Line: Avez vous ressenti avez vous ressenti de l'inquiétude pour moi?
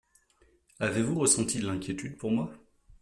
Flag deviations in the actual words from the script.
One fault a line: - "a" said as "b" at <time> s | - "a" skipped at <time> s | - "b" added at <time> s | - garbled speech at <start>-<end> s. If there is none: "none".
- "avez vous ressenti" skipped at 1.6 s